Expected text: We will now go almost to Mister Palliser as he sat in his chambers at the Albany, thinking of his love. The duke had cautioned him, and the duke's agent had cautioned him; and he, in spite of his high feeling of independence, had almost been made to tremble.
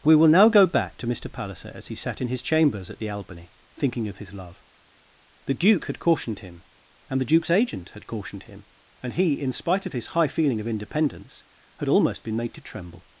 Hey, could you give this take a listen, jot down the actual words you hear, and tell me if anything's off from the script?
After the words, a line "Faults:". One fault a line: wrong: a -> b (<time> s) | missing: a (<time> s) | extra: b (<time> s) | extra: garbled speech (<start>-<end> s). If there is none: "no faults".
We will now go back to Mister Palliser as he sat in his chambers at the Albany, thinking of his love. The duke had cautioned him, and the duke's agent had cautioned him; and he, in spite of his high feeling of independence, had almost been made to tremble.
Faults:
wrong: almost -> back (0.7 s)